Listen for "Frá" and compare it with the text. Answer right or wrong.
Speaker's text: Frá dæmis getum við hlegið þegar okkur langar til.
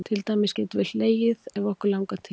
wrong